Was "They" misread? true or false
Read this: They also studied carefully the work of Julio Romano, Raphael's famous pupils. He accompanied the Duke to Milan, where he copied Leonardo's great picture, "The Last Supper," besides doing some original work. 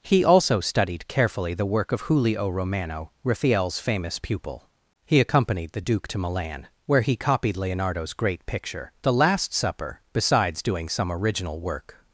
true